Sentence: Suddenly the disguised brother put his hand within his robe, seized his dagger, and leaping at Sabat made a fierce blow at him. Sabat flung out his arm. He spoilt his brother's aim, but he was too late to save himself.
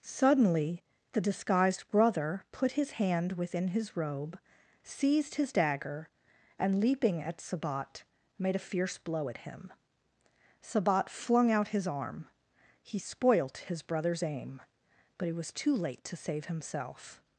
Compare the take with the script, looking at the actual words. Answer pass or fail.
fail